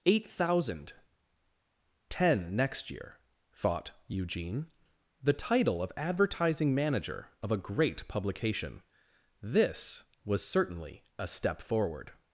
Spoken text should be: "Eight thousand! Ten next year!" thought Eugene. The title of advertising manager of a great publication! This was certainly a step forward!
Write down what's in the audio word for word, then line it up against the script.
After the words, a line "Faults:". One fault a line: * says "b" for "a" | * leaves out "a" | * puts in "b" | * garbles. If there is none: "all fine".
"Eight thousand! Ten next year!" thought Eugene. The title of advertising manager of a great publication! This was certainly a step forward!
Faults:
all fine